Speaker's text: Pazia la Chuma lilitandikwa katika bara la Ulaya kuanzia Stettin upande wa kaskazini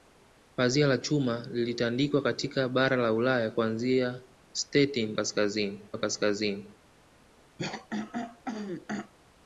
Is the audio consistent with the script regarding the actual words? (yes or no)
no